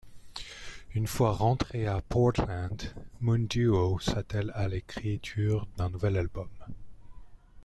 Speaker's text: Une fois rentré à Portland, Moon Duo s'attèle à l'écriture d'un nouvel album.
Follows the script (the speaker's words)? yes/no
yes